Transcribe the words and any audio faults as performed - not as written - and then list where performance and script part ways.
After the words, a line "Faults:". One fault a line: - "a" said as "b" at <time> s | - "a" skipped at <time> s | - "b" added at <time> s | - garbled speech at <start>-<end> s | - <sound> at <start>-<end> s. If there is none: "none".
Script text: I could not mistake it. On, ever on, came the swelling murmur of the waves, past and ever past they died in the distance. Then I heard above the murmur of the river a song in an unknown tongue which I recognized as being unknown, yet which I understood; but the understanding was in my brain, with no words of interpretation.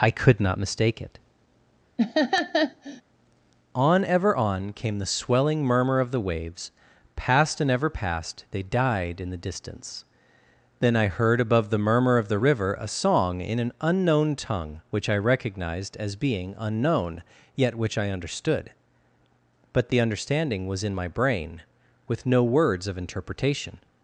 I could not mistake it. On, ever on, came the swelling murmur of the waves, past and ever past they died in the distance. Then I heard above the murmur of the river a song in an unknown tongue which I recognized as being unknown, yet which I understood; but the understanding was in my brain, with no words of interpretation.
Faults:
- laugh at 2.0-3.0 s